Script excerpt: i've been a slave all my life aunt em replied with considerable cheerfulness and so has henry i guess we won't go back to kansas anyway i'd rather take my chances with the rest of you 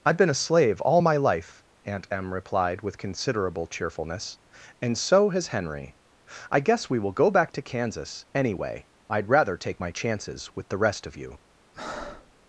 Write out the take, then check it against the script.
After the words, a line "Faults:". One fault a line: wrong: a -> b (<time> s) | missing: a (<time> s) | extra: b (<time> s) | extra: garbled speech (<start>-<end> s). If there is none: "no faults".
i've been a slave all my life aunt em replied with considerable cheerfulness and so has henry i guess we will go back to kansas anyway i'd rather take my chances with the rest of you
Faults:
wrong: won't -> will (7.0 s)